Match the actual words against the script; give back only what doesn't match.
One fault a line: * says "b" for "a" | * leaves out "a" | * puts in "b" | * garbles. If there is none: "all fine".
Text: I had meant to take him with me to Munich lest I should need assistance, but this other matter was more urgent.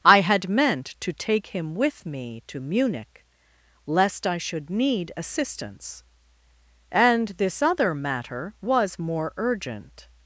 * says "and" for "but"